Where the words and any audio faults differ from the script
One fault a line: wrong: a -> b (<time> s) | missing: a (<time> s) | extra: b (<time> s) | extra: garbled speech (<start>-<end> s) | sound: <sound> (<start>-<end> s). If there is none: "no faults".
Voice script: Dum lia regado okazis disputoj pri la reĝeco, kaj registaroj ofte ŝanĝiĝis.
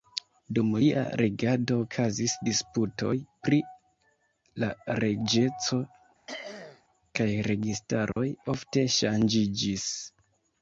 sound: throat clearing (6.3-6.8 s)
sound: dropout (8.1-8.2 s)